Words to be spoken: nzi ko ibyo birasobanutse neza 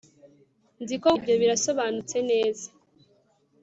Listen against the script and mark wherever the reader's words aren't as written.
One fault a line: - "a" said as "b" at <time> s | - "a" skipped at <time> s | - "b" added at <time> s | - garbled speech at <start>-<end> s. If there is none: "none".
none